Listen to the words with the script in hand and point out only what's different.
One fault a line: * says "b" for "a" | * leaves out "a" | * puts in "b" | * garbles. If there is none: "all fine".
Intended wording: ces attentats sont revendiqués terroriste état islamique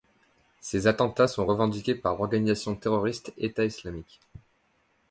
* puts in "par l'organisation"